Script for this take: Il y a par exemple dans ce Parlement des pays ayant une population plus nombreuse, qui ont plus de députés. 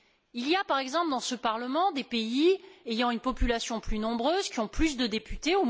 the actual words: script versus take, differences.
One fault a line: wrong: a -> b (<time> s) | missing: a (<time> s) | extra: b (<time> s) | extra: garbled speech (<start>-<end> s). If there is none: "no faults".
no faults